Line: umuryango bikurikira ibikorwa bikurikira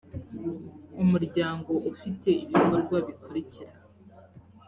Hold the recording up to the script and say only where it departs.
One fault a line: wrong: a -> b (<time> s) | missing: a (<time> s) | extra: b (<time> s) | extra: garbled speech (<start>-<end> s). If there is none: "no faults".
wrong: bikurikira -> ufite (1.9 s)